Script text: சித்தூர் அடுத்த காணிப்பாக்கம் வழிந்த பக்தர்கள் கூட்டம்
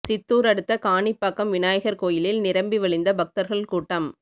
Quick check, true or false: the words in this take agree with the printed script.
false